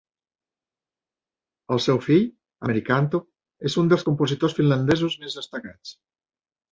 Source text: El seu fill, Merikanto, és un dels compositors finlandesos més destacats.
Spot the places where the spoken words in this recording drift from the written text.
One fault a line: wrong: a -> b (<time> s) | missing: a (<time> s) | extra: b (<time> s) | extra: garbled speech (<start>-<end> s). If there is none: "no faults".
no faults